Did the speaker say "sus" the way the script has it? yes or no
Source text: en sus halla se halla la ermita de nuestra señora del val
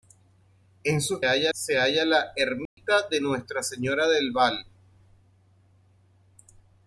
yes